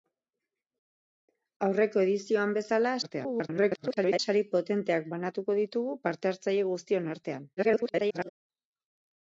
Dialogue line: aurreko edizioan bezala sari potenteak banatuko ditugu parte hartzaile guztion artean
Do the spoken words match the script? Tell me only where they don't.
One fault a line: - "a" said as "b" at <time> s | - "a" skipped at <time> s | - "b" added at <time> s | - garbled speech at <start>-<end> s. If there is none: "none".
- garbled speech at 3.0-4.2 s
- garbled speech at 7.6-8.3 s